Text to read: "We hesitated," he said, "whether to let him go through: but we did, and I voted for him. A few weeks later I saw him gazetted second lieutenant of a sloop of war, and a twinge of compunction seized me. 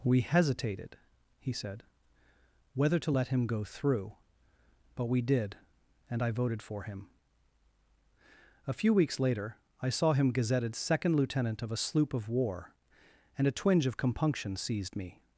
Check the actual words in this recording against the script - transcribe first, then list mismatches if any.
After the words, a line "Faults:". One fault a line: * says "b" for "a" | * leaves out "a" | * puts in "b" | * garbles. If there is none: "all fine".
"We hesitated," he said, "whether to let him go through: but we did, and I voted for him. A few weeks later I saw him gazetted second lieutenant of a sloop of war, and a twinge of compunction seized me.
Faults:
all fine